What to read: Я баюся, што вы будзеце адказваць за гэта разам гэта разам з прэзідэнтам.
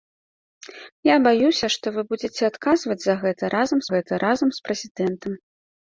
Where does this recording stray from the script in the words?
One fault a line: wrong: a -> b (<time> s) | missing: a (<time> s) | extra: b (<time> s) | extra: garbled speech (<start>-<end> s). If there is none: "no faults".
no faults